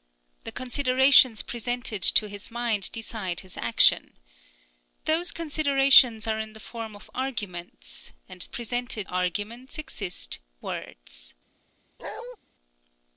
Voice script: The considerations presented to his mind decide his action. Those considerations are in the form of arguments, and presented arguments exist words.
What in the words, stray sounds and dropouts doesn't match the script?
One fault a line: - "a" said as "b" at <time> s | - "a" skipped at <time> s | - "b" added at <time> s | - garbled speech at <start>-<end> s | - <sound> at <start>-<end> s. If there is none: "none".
- bark at 12.0-12.4 s